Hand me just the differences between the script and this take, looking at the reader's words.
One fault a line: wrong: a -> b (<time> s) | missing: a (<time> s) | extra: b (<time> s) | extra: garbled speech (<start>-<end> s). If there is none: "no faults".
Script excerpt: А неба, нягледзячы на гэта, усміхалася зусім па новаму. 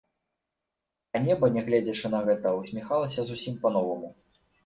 no faults